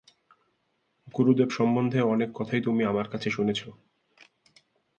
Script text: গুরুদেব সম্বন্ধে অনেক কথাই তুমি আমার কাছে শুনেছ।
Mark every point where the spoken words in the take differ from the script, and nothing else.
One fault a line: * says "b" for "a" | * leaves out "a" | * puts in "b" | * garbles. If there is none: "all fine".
all fine